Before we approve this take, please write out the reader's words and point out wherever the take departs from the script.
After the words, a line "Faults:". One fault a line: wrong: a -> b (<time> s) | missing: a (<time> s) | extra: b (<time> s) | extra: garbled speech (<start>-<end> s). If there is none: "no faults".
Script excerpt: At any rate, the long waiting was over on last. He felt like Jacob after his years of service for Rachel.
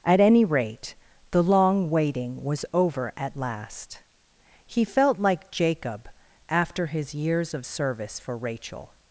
At any rate, the long waiting was over at last. He felt like Jacob after his years of service for Rachel.
Faults:
wrong: on -> at (3.2 s)